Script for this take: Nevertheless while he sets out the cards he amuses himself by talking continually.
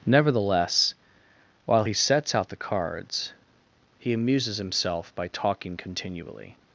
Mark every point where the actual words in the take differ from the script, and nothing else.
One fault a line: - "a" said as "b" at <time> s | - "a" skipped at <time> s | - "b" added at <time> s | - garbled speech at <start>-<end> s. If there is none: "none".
none